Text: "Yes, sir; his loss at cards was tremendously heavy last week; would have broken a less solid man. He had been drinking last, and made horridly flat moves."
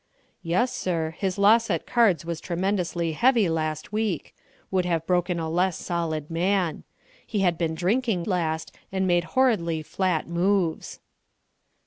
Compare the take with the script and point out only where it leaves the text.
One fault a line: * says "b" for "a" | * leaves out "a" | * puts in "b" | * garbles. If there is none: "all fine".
all fine